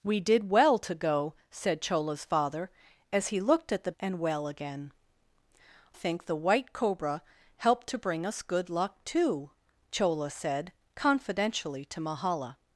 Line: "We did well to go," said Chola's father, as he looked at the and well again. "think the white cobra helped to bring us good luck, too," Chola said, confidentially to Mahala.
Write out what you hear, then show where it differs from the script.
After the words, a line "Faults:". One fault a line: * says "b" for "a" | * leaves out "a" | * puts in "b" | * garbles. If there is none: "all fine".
"We did well to go," said Chola's father, as he looked at the and well again. "think the white cobra helped to bring us good luck, too," Chola said, confidentially to Mahala.
Faults:
all fine